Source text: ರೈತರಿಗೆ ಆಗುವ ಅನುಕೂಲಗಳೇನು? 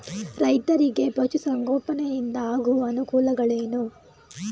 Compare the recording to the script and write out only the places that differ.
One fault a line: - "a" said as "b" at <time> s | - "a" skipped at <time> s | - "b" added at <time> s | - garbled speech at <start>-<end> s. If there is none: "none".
- "ಪಶು ಸಂಗೋಪನೆಯಿಂದ" added at 1.1 s